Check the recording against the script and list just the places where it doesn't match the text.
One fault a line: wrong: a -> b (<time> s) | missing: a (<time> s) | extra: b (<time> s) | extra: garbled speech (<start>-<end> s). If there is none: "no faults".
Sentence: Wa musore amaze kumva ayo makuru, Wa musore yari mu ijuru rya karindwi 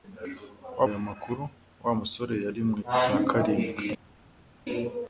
missing: musore amaze kumva (0.8 s)
missing: ijuru (2.8 s)